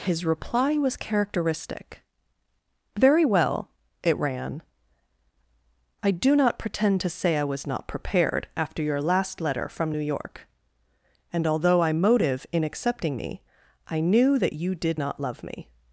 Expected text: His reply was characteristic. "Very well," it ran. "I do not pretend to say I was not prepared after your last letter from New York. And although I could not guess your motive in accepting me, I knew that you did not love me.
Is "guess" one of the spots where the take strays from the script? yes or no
yes